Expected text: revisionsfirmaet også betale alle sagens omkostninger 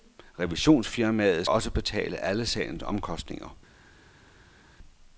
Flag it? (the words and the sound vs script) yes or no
no